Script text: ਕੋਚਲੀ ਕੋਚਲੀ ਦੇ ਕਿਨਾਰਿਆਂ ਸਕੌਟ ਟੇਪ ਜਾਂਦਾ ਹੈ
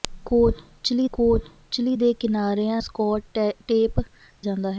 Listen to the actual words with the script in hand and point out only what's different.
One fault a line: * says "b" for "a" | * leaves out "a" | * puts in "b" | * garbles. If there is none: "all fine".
all fine